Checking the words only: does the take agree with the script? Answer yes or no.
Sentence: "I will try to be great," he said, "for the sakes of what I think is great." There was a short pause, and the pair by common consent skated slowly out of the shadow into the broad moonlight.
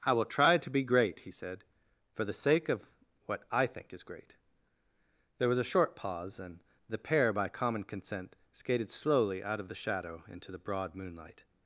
no